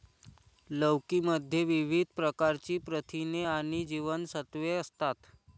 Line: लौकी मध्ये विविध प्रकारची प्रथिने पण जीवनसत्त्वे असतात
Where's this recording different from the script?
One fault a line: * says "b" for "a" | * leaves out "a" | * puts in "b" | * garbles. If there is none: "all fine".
* says "आणि" for "पण"